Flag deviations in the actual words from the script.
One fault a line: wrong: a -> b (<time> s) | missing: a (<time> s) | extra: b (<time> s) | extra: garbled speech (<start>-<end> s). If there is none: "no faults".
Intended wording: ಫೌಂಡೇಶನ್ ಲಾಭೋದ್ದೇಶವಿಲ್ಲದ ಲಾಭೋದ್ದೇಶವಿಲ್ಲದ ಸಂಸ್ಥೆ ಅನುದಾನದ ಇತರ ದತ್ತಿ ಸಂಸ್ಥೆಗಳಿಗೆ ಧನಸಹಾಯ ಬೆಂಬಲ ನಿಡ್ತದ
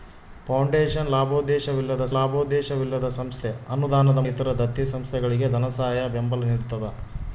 no faults